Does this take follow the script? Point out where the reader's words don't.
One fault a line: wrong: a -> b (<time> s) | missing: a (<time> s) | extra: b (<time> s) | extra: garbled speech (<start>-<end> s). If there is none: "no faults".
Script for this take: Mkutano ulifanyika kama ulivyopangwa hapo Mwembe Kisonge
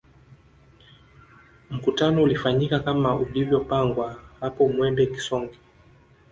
no faults